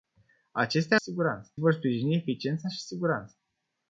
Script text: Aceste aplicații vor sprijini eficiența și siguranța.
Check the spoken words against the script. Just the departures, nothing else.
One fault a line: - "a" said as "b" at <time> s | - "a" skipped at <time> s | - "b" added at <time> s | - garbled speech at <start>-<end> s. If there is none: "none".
- "aplicații" said as "siguranța" at 0.9 s